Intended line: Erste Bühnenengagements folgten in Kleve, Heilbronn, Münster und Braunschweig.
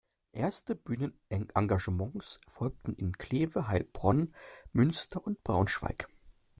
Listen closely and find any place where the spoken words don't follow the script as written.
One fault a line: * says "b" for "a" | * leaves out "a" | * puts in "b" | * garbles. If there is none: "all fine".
all fine